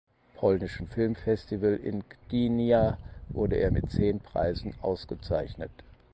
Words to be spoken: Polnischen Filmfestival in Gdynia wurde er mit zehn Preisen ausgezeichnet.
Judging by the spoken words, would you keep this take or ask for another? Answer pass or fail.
pass